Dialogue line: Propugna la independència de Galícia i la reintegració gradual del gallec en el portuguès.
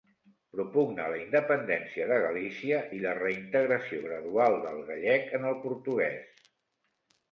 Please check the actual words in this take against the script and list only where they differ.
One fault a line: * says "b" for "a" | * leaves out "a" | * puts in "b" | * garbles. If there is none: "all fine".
all fine